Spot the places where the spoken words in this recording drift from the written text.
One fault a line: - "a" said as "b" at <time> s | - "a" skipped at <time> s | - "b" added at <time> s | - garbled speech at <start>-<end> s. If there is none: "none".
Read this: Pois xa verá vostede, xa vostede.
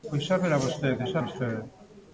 none